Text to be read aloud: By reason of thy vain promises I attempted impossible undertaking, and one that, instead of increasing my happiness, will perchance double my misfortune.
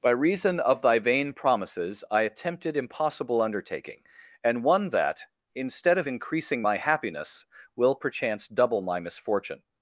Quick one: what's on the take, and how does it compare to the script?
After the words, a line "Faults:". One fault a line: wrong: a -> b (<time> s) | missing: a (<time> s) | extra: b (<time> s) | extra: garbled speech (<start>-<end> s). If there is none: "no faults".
By reason of thy vain promises I attempted impossible undertaking, and one that, instead of increasing my happiness, will perchance double my misfortune.
Faults:
no faults